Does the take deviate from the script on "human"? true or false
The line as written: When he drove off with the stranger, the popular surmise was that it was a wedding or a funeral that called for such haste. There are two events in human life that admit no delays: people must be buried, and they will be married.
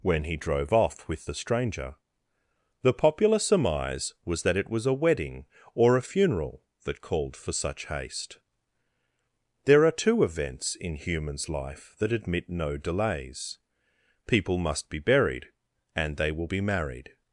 true